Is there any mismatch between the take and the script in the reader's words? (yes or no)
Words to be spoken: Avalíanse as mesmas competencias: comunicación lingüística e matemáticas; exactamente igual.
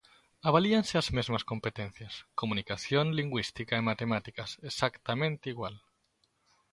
no